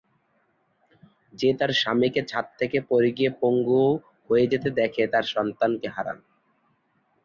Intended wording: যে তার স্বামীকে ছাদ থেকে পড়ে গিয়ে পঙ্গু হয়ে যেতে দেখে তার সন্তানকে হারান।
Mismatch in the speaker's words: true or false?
false